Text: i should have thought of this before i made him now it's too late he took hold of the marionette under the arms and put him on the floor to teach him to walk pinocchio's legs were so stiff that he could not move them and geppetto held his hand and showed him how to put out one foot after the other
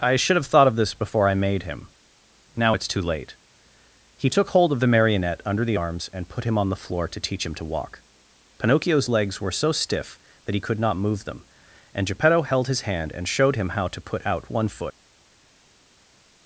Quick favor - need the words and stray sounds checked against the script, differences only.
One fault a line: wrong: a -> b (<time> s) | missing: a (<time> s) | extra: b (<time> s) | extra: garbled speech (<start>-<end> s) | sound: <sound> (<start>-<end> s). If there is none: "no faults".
missing: after the other (14.8 s)